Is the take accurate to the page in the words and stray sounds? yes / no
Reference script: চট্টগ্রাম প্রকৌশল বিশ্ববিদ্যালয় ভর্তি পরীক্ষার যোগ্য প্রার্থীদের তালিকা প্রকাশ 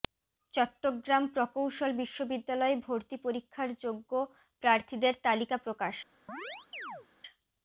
no